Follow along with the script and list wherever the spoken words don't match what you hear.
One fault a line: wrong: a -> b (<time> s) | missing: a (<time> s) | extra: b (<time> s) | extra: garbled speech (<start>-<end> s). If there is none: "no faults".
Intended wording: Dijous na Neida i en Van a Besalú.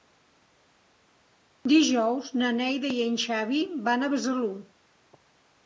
extra: Xavi (3.3 s)